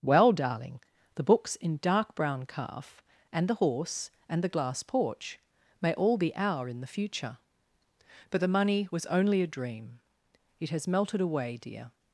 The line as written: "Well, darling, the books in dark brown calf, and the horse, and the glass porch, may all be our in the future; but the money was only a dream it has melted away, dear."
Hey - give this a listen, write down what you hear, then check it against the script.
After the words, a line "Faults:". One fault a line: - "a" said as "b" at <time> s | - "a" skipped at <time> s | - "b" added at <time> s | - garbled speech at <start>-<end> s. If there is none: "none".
"Well, darling, the books in dark brown calf, and the horse, and the glass porch, may all be our in the future; but the money was only a dream it has melted away, dear."
Faults:
none